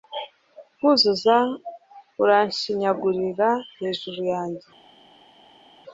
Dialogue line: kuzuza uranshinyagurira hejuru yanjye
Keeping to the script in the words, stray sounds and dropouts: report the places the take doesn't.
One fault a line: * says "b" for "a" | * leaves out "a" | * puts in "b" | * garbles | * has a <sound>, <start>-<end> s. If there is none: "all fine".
all fine